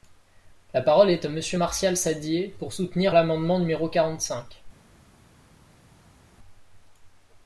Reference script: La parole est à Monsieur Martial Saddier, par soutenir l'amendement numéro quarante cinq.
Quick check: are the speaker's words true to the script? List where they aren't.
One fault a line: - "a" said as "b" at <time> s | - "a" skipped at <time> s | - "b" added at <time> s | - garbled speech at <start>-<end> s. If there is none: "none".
- "par" said as "pour" at 2.6 s